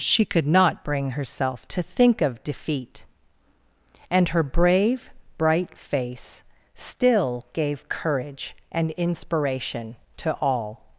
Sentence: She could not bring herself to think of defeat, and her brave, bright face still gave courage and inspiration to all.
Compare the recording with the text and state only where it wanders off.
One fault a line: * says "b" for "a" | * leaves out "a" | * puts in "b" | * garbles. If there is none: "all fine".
all fine